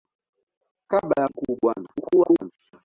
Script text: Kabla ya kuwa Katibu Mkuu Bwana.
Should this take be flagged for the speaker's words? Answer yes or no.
yes